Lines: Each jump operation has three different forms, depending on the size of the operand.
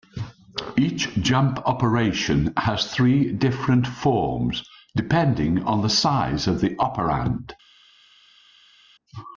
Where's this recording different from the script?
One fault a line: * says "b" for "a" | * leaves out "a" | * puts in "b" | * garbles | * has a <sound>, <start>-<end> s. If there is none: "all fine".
all fine